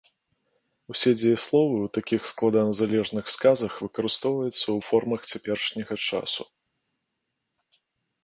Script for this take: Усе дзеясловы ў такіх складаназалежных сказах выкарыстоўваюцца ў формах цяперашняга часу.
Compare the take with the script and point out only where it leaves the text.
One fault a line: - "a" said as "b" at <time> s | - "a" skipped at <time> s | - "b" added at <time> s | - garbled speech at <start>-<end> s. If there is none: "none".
none